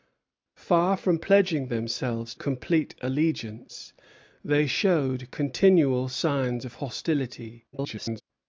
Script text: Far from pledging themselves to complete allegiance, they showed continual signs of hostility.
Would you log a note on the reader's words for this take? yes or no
yes